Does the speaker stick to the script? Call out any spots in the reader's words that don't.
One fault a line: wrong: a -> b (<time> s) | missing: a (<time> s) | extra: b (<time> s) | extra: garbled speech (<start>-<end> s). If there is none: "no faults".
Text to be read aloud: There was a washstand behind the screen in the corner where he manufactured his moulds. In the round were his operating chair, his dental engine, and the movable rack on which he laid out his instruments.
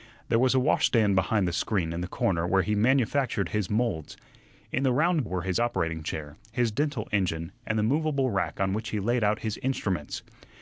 no faults